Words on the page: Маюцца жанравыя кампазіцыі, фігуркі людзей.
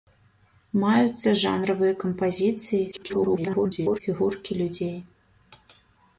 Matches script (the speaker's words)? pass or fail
fail